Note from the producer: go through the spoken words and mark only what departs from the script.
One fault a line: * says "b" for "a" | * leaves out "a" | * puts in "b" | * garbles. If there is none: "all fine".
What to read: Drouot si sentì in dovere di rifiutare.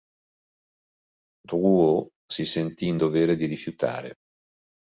all fine